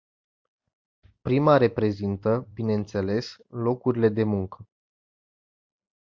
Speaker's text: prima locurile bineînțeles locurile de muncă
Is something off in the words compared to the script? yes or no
yes